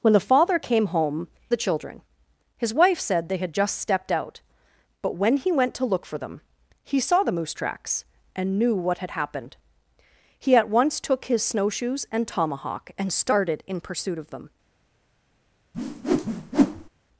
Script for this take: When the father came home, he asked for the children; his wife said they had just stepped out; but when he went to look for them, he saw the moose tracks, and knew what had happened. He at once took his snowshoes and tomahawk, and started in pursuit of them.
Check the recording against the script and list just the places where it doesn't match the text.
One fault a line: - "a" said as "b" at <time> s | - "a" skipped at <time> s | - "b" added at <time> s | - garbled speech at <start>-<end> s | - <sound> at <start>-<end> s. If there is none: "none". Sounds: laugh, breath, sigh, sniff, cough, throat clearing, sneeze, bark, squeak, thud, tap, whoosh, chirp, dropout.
- "he asked for" skipped at 1.3 s
- whoosh at 15.7-16.9 s